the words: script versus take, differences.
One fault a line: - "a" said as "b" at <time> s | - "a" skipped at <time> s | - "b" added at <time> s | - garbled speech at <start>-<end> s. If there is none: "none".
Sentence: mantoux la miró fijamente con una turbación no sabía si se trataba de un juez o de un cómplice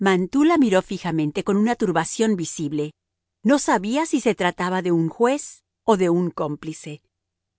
- "visible" added at 2.4 s